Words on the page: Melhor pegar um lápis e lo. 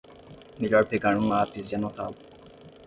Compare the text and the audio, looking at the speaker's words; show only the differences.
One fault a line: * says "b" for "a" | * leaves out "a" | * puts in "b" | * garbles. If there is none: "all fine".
* puts in "anotá"